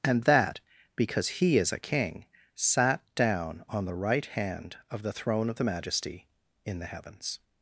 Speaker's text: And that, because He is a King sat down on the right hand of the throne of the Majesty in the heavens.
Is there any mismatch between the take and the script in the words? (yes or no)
no